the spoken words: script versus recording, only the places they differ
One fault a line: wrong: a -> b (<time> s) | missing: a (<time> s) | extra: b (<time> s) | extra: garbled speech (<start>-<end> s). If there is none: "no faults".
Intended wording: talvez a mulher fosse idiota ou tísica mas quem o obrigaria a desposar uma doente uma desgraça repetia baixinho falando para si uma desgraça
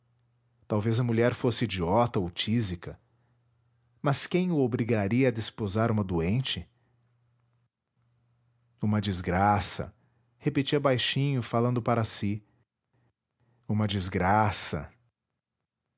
no faults